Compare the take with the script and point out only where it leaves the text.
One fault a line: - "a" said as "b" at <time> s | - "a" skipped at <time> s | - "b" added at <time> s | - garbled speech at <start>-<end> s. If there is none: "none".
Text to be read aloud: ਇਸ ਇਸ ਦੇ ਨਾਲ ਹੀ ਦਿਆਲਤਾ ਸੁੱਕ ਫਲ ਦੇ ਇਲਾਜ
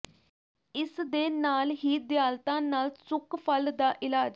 - "ਇਸ" skipped at 1.0 s
- "ਨਾਲ" added at 2.6 s
- "ਦੇ" said as "ਦਾ" at 3.7 s